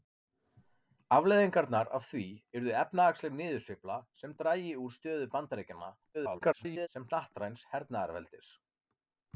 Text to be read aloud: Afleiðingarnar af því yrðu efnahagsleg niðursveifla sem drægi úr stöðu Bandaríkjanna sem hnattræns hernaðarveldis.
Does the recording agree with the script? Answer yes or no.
no